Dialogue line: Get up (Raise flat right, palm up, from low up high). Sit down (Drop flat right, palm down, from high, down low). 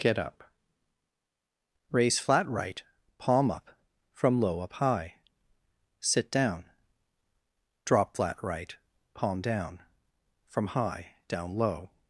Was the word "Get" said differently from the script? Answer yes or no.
no